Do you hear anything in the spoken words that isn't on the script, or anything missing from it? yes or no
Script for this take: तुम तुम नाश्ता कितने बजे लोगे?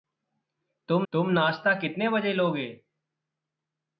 no